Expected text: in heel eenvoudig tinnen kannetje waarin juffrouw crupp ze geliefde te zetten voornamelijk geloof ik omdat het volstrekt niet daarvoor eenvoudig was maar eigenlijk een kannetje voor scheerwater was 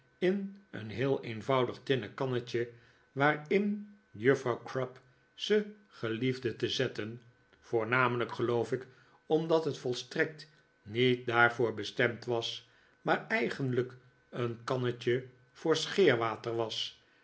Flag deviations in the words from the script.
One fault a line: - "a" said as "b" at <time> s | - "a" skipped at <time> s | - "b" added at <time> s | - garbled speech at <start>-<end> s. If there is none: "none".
- "een" added at 0.7 s
- "eenvoudig" said as "bestemd" at 11.7 s